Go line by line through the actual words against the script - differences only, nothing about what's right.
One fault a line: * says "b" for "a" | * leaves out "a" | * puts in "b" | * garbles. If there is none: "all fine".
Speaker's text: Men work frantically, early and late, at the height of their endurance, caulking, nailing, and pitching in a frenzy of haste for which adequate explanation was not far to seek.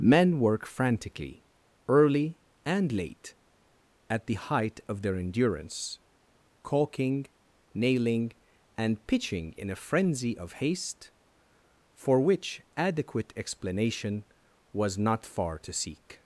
all fine